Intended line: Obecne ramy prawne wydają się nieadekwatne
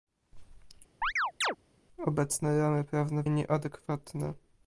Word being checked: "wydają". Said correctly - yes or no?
no